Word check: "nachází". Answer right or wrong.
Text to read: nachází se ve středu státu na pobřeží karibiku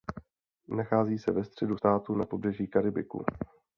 right